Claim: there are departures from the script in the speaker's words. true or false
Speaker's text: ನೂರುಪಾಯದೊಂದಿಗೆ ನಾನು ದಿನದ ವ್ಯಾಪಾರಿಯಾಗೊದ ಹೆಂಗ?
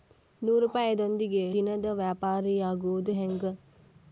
true